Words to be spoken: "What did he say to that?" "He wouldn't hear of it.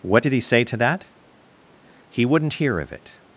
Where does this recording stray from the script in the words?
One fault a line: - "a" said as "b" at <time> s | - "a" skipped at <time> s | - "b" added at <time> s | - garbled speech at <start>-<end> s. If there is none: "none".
none